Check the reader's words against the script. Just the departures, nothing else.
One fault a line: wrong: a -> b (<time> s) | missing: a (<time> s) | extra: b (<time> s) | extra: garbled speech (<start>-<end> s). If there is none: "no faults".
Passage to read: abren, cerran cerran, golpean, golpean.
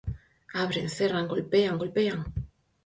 missing: cerran (1.3 s)